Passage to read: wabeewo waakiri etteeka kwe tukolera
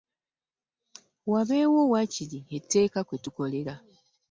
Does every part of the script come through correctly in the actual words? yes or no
yes